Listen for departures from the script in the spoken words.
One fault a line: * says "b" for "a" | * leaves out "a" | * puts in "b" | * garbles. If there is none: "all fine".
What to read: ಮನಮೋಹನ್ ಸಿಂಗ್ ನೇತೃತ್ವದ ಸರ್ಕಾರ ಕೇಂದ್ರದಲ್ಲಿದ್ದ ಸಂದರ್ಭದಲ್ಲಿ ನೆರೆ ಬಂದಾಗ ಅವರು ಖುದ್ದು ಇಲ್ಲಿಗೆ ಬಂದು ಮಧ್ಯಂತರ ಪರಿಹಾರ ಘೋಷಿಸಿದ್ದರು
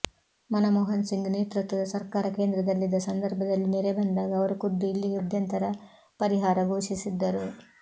* leaves out "ಬಂದು"